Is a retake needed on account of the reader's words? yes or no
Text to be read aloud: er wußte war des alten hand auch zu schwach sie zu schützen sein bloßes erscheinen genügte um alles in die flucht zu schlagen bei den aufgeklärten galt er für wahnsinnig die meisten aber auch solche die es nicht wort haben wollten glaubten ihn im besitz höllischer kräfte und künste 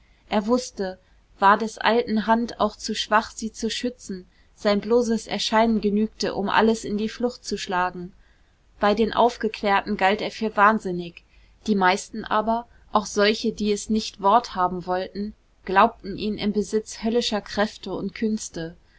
no